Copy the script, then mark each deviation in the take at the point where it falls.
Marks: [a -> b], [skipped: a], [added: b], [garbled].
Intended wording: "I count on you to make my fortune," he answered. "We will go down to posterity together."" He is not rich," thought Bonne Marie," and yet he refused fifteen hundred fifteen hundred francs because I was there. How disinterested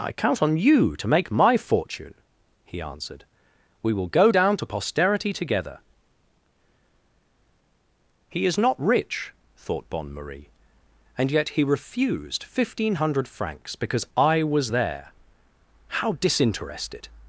"I count on you to make my fortune," he answered. "We will go down to posterity together."" He is not rich," thought Bonne Marie," and yet he refused fifteen hundred [skipped: fifteen hundred] francs because I was there. How disinterested